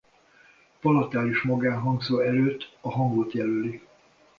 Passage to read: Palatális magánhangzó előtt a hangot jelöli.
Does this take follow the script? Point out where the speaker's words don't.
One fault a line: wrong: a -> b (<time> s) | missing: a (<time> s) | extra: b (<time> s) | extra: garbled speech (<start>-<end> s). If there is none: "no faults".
no faults